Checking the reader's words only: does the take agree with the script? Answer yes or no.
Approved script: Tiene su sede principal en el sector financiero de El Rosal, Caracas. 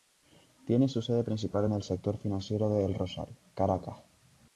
yes